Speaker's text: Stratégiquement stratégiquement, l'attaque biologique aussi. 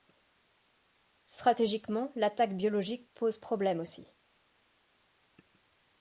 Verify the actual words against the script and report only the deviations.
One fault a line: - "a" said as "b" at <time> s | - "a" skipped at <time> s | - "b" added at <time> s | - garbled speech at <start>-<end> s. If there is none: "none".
- "stratégiquement" skipped at 2.1 s
- "pose problème" added at 3.1 s